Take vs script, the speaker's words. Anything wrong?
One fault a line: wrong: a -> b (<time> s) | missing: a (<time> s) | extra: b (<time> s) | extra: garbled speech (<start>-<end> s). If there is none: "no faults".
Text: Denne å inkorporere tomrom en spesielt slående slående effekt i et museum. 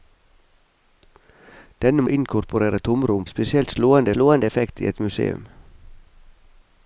no faults